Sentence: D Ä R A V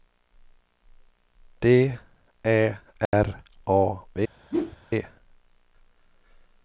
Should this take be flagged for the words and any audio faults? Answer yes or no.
yes